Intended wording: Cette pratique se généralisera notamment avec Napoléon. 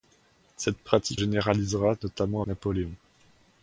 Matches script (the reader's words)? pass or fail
fail